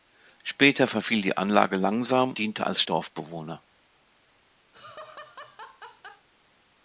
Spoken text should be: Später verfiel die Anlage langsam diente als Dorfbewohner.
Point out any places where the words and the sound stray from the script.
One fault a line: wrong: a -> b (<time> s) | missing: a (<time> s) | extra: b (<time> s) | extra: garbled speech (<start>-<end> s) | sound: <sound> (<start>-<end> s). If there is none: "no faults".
sound: laugh (4.7-6.3 s)